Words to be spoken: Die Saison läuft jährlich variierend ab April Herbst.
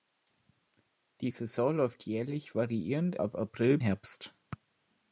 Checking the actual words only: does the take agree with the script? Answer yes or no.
yes